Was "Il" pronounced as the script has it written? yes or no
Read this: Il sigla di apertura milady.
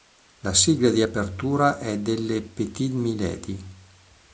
no